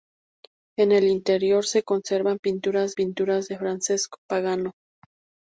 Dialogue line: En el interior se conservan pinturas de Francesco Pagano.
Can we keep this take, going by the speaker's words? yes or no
no